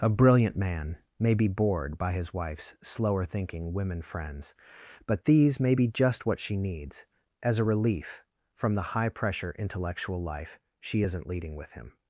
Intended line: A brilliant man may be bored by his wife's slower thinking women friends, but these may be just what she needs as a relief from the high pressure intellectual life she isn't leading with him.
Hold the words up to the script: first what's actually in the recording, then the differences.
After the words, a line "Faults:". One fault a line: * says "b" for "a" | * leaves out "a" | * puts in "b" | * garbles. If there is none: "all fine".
A brilliant man may be bored by his wife's slower thinking women friends, but these may be just what she needs as a relief from the high pressure intellectual life she isn't leading with him.
Faults:
all fine